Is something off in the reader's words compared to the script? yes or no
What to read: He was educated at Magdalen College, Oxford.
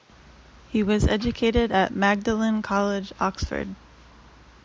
no